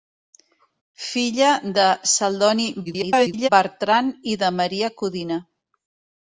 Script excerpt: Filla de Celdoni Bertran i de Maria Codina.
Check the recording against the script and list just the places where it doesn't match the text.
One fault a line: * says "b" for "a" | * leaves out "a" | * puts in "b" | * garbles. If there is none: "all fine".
* garbles